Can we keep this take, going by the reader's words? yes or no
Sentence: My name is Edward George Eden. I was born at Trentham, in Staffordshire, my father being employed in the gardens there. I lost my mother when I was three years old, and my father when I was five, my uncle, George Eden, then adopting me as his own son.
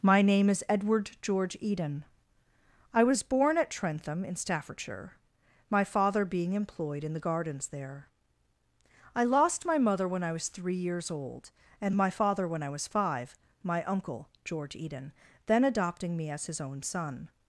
yes